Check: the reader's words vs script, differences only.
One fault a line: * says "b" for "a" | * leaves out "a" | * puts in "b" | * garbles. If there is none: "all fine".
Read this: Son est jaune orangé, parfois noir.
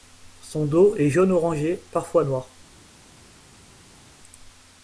* puts in "dos"